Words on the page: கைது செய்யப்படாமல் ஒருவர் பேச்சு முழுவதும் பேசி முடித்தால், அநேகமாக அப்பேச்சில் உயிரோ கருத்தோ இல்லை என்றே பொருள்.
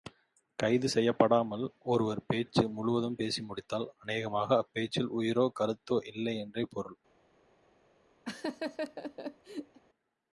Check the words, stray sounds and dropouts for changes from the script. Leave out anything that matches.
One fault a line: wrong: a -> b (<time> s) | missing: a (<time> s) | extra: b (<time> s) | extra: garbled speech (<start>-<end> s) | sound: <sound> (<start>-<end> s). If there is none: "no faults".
sound: laugh (8.3-9.8 s)